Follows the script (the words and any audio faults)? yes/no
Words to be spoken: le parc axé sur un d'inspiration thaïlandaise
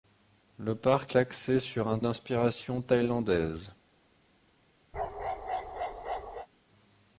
no